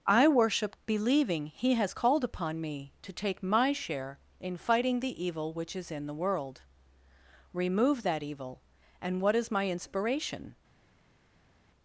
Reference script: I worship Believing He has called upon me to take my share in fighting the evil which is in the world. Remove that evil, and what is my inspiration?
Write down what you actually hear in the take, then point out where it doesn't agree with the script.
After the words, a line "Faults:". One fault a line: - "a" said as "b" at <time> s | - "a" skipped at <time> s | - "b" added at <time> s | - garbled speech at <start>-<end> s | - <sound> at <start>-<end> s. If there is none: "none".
I worship Believing He has called upon me to take my share in fighting the evil which is in the world. Remove that evil, and what is my inspiration?
Faults:
none